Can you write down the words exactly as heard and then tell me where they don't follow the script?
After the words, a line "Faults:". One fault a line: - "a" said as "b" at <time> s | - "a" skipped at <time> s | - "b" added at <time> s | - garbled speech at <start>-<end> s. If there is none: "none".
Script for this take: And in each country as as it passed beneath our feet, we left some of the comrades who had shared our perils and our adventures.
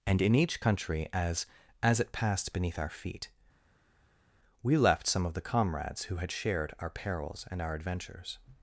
And in each country as as it passed beneath our feet, we left some of the comrades who had shared our perils and our adventures.
Faults:
none